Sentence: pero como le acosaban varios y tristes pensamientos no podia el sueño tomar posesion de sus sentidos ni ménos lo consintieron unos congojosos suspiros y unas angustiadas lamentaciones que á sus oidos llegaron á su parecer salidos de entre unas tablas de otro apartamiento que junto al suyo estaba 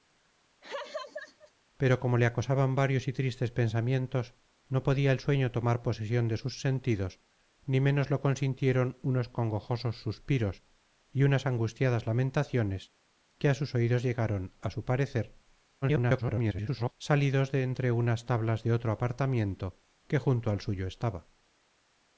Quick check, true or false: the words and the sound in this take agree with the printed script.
false